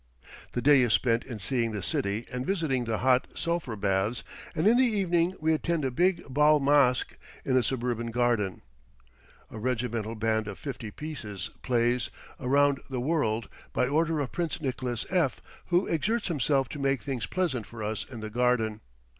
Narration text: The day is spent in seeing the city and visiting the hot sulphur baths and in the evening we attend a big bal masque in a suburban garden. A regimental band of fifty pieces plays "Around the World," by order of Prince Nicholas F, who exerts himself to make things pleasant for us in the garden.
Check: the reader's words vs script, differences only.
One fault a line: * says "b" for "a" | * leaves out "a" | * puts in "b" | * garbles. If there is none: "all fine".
all fine